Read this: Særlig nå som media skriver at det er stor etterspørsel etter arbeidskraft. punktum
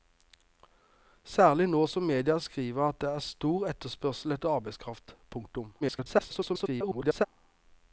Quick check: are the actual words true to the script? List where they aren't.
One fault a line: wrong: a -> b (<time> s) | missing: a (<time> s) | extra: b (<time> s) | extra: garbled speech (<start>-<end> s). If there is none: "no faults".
extra: garbled speech (5.8-7.3 s)